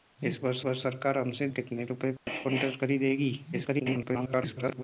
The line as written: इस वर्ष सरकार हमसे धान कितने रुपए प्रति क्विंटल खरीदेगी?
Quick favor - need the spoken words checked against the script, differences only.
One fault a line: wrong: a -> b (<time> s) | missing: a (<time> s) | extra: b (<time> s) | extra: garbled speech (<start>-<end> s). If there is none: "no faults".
extra: वर्ष (0.6 s)
missing: धान (1.5 s)
extra: garbled speech (3.5-4.8 s)